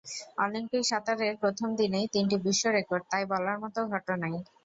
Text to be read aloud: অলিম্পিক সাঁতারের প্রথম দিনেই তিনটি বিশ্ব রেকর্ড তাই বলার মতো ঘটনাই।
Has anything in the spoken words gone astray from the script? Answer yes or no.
no